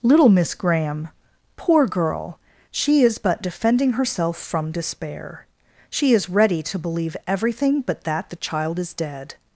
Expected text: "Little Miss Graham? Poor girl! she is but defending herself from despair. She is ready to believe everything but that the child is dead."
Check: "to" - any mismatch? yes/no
no